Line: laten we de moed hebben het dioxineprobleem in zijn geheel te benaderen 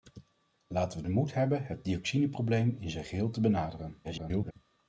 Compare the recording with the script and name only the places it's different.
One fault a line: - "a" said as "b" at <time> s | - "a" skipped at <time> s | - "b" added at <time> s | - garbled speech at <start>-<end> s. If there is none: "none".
- garbled speech at 4.0-4.5 s